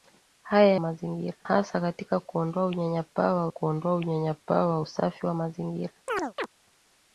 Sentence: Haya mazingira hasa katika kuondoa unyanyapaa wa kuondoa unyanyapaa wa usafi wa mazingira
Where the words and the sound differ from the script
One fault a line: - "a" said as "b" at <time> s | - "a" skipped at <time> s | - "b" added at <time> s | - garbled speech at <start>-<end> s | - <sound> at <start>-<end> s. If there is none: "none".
- chirp at 6.1-6.5 s